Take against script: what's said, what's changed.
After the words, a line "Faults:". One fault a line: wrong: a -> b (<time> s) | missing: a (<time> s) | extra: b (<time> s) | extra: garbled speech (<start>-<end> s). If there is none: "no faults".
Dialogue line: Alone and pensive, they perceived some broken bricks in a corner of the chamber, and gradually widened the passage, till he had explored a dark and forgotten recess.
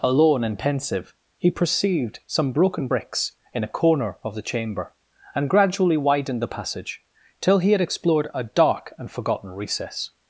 Alone and pensive, he perceived some broken bricks in a corner of the chamber, and gradually widened the passage, till he had explored a dark and forgotten recess.
Faults:
wrong: they -> he (1.4 s)